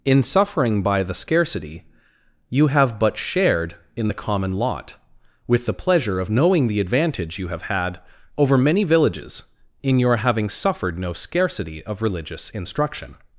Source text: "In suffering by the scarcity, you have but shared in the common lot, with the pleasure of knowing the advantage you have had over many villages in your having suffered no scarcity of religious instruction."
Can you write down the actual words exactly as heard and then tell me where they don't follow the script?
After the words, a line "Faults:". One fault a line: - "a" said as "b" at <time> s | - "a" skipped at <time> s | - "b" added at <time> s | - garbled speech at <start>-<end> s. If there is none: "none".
"In suffering by the scarcity, you have but shared in the common lot, with the pleasure of knowing the advantage you have had over many villages in your having suffered no scarcity of religious instruction."
Faults:
none